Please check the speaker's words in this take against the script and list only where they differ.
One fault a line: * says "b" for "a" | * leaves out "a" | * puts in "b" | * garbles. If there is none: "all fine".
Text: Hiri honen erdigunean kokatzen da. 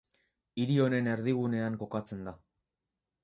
all fine